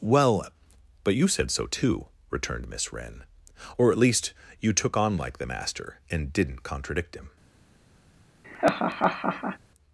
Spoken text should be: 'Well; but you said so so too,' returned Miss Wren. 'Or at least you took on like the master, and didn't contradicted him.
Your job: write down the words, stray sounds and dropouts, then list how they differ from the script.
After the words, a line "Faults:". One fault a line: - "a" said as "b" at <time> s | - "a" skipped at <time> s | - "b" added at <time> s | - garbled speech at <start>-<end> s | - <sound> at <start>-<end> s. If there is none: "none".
'Well; but you said so too,' returned Miss Wren. 'Or at least you took on like the master, and didn't contradict him.
Faults:
- "so" skipped at 1.7 s
- "contradicted" said as "contradict" at 6.6 s
- laugh at 8.4-9.6 s